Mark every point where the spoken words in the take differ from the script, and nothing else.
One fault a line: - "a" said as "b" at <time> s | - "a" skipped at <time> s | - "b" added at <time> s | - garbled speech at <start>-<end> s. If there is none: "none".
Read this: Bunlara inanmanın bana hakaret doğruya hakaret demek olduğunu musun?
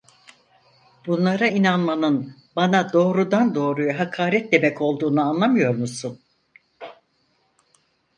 - "hakaret" said as "doğrudan" at 2.9 s
- "anlamıyor" added at 5.3 s